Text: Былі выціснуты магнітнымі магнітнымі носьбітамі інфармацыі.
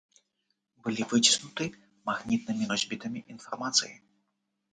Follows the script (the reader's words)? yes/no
no